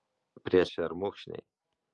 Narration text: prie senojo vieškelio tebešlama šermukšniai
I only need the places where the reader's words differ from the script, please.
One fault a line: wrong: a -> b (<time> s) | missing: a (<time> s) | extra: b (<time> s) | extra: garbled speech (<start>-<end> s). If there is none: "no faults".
missing: senojo vieškelio tebešlama (0.6 s)